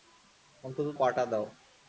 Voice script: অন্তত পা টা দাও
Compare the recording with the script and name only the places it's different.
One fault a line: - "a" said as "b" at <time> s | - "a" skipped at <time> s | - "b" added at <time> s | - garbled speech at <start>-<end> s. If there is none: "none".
none